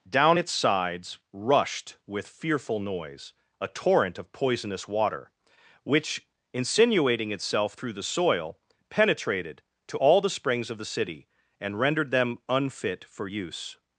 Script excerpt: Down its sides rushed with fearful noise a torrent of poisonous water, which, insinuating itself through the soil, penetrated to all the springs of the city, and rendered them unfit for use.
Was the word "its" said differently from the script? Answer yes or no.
no